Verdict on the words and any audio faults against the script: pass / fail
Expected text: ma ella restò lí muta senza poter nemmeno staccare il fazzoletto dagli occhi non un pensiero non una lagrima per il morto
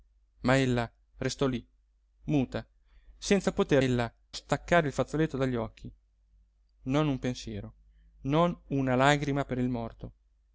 fail